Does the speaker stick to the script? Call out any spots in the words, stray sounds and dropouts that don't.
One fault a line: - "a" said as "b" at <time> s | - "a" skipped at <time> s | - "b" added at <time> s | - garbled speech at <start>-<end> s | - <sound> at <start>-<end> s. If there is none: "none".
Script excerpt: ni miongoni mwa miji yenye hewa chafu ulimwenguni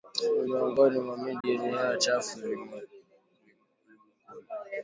- dropout at 1.4-1.4 s